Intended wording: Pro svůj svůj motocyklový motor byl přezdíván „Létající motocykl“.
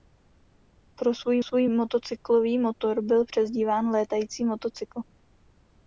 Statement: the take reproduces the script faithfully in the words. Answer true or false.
true